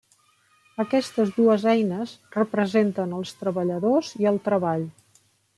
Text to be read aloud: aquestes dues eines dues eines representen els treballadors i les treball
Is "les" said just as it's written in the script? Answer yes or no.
no